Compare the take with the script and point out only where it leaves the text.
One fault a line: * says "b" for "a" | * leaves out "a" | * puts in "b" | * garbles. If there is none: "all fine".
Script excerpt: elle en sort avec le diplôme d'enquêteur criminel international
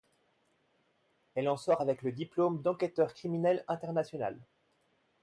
all fine